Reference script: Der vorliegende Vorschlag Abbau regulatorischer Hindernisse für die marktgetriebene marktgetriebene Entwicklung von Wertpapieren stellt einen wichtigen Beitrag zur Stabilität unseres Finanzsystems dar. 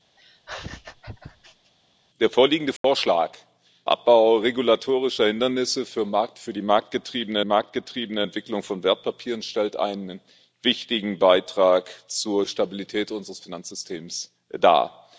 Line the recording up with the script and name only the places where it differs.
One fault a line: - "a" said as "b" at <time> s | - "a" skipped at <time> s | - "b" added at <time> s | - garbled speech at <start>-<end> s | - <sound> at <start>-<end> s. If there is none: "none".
- laugh at 0.2-1.7 s
- dropout at 2.8-2.8 s